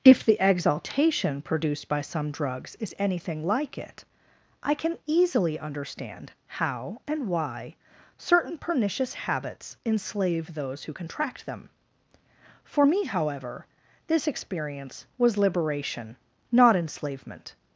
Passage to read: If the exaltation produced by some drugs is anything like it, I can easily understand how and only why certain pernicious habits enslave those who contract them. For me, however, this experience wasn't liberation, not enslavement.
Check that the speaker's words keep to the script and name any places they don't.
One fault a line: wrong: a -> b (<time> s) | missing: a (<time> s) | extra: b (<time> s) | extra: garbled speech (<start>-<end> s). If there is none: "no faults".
missing: only (7.3 s)
wrong: wasn't -> was (15.2 s)